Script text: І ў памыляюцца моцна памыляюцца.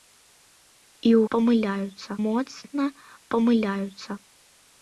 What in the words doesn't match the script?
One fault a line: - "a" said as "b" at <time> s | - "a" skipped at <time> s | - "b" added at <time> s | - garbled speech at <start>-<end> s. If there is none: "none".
none